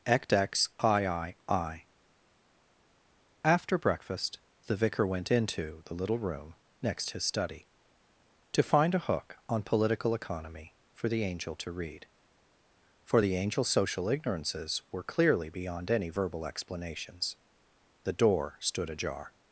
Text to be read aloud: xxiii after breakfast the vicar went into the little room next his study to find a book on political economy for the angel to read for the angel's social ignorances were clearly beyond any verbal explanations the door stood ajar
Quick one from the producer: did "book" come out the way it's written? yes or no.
no